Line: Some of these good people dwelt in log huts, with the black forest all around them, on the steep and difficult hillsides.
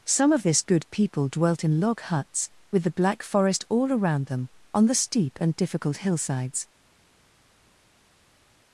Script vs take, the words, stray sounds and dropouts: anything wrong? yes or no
yes